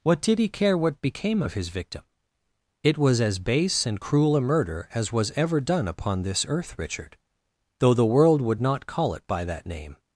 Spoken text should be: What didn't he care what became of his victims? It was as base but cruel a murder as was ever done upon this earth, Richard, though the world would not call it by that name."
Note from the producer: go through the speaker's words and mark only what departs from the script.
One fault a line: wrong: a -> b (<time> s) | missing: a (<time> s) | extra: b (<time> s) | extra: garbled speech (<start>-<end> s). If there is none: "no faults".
wrong: didn't -> did (0.2 s)
wrong: victims -> victim (1.7 s)
wrong: but -> and (3.9 s)